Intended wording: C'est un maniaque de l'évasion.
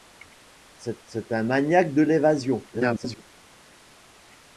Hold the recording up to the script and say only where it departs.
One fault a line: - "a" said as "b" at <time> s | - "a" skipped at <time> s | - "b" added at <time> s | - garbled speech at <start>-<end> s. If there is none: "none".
- "c'est" added at 1.0 s
- garbled speech at 2.7-3.2 s